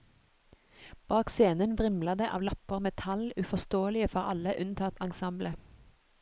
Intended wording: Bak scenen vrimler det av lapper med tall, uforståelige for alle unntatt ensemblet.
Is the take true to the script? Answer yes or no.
yes